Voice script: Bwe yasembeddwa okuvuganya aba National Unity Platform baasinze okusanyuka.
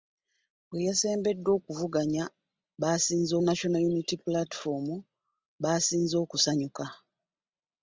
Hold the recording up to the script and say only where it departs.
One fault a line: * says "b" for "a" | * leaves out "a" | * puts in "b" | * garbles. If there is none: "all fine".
* says "baasinze" for "aba"